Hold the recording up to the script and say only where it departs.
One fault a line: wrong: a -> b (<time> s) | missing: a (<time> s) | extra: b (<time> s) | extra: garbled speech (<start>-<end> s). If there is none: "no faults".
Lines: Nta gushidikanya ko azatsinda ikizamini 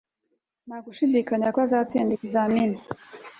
no faults